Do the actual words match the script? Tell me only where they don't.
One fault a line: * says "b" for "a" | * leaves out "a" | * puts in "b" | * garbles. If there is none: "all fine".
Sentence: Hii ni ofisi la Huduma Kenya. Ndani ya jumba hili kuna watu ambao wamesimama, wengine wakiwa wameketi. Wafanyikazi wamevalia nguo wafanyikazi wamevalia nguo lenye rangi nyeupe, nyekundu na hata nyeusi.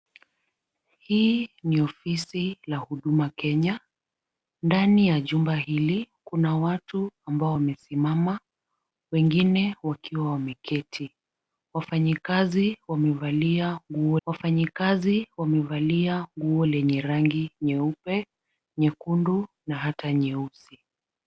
all fine